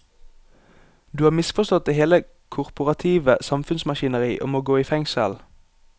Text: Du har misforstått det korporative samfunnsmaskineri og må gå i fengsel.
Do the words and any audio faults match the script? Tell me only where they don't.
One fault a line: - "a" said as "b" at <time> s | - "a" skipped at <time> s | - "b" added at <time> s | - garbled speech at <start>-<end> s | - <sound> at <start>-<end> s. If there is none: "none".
- "hele" added at 1.9 s